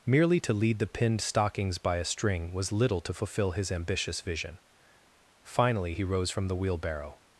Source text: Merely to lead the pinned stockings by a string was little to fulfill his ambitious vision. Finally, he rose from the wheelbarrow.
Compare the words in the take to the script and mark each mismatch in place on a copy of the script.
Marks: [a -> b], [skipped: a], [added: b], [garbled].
Merely to lead the pinned stockings by a string was little to fulfill his ambitious vision. Finally, he rose from the wheelbarrow.